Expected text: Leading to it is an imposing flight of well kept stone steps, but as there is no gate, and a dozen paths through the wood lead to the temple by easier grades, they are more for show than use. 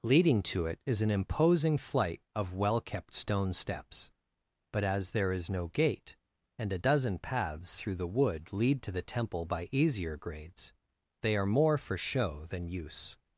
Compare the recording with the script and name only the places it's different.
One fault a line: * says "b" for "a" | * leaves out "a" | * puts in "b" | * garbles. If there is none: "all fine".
all fine